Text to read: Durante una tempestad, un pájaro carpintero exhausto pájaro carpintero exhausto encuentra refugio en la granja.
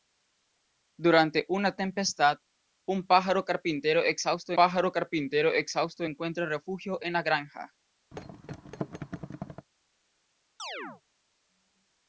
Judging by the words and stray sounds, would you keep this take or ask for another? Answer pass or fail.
fail